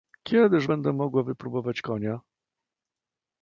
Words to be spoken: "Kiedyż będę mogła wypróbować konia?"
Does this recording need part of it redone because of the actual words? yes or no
no